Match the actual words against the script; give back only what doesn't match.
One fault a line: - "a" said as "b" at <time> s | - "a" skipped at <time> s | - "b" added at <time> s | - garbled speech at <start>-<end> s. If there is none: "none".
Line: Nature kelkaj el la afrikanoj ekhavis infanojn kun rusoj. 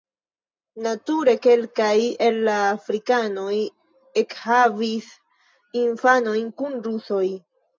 none